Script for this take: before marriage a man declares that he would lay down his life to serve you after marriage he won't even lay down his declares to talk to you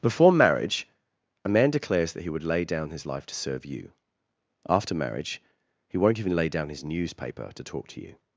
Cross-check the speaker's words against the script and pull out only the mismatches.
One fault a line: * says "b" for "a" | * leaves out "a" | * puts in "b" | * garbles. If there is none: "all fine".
* says "newspaper" for "declares"